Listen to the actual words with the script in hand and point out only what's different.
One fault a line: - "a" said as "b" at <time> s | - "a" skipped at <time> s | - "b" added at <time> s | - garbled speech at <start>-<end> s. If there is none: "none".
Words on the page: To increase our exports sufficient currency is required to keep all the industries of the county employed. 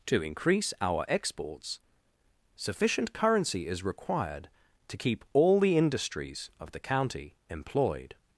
none